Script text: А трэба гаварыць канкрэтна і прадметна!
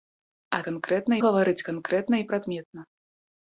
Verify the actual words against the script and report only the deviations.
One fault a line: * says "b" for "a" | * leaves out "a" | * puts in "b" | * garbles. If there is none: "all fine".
* says "канкрэтна" for "трэба"